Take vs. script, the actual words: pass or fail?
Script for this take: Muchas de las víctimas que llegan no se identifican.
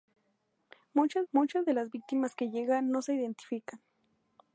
fail